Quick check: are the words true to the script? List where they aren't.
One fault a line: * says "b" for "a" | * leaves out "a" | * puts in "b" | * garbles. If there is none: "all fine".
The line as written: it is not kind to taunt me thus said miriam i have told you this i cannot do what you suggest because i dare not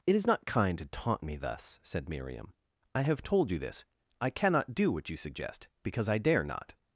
all fine